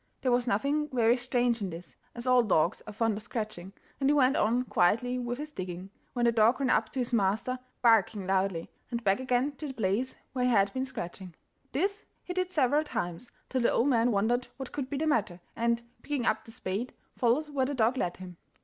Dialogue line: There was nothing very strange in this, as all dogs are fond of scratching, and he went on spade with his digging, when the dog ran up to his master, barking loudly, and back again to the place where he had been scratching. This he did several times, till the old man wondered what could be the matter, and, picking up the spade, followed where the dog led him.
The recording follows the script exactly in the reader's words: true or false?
false